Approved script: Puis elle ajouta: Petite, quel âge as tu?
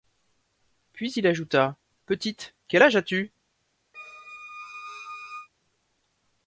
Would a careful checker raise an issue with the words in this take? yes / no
yes